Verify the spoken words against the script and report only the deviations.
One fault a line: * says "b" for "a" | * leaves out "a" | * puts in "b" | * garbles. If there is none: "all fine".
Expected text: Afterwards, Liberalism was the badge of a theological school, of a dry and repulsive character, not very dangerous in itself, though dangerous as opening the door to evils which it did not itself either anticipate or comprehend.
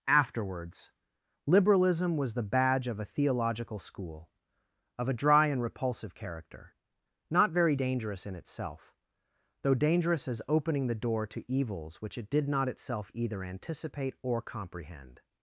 all fine